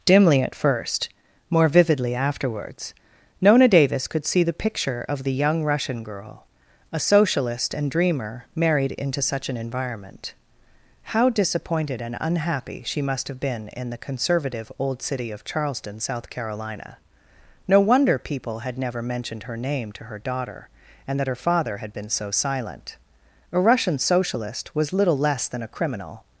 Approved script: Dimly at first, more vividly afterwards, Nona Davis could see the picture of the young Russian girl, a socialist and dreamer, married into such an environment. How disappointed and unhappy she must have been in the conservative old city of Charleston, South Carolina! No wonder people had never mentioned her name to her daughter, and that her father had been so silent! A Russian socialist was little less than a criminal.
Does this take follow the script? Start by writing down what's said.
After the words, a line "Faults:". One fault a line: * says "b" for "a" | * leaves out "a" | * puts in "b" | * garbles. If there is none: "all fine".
Dimly at first, more vividly afterwards, Nona Davis could see the picture of the young Russian girl, a socialist and dreamer, married into such an environment. How disappointed and unhappy she must have been in the conservative old city of Charleston, South Carolina! No wonder people had never mentioned her name to her daughter, and that her father had been so silent! A Russian socialist was little less than a criminal.
Faults:
all fine